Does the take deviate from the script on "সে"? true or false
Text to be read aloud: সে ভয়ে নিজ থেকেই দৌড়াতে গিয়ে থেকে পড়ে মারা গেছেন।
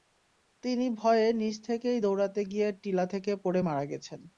true